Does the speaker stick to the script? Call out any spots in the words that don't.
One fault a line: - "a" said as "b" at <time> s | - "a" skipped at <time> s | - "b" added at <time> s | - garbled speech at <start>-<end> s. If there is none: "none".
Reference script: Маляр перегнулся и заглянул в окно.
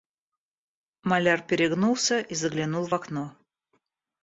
none